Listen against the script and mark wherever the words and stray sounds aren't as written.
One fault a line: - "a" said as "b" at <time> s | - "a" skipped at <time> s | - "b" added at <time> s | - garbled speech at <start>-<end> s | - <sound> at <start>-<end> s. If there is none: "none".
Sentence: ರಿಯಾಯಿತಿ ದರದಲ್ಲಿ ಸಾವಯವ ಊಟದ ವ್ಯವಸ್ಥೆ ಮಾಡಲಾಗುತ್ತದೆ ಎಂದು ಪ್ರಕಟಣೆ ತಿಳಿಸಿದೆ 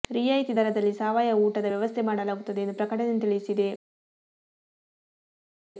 none